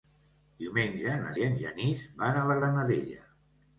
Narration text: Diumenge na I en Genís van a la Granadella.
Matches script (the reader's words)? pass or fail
pass